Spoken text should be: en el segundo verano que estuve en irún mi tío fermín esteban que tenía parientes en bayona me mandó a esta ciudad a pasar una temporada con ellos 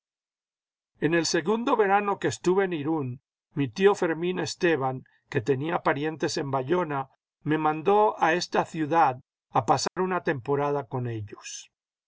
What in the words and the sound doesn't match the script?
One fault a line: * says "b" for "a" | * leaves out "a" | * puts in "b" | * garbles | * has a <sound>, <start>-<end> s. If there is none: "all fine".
* has a dropout, 9.9-10.0 s